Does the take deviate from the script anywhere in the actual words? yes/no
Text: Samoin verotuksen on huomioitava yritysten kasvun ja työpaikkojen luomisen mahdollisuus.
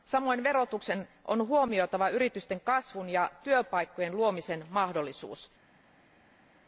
no